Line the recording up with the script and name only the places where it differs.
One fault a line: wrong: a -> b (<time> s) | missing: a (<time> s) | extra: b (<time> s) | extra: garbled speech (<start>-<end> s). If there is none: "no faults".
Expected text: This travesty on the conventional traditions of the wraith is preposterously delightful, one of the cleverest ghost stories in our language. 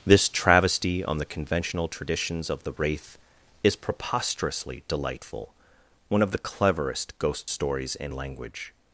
missing: our (8.1 s)